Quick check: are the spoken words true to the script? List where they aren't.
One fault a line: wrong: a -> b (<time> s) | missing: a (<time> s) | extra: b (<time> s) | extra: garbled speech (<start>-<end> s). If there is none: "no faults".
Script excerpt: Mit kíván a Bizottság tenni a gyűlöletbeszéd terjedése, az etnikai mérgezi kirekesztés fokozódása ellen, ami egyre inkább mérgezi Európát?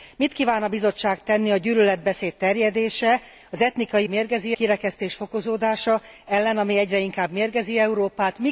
no faults